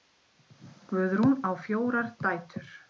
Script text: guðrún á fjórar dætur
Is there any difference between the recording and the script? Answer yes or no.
no